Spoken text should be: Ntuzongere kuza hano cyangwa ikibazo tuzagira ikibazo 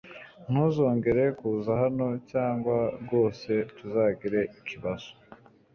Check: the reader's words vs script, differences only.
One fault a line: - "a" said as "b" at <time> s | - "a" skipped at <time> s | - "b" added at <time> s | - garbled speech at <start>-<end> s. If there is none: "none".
- "ikibazo" said as "rwose" at 3.0 s